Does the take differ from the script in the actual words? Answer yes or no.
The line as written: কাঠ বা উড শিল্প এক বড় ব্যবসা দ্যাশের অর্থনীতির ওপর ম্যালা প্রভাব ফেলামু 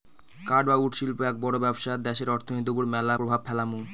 no